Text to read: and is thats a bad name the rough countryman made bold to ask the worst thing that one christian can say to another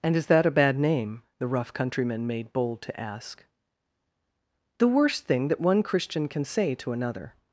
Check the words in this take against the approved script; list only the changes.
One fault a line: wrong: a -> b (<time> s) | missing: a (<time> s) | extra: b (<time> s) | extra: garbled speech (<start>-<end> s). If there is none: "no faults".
wrong: thats -> that (0.2 s)